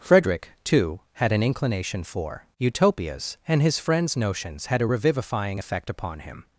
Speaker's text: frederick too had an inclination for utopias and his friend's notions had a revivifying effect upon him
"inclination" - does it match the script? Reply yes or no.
yes